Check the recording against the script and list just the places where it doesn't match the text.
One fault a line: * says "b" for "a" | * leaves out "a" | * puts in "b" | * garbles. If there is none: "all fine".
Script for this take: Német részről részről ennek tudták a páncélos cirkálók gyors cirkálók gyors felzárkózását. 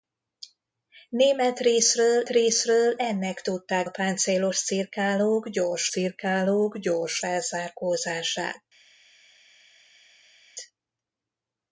all fine